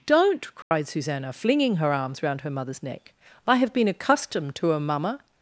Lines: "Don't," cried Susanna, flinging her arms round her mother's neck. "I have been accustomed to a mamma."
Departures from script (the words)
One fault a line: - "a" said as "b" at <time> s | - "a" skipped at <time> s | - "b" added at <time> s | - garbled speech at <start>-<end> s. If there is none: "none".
none